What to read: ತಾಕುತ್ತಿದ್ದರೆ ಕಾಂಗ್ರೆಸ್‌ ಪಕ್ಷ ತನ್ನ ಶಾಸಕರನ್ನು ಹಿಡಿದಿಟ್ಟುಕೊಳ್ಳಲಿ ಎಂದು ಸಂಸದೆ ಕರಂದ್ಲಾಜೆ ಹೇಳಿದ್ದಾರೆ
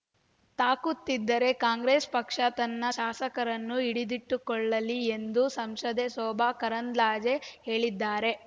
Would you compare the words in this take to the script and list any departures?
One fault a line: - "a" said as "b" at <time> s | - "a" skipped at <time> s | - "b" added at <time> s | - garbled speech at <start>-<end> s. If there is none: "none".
- "ಶೋಭಾ" added at 6.1 s